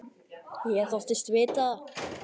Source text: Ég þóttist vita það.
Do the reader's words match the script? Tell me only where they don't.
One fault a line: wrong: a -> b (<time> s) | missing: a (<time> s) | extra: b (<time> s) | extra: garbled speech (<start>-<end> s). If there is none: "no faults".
no faults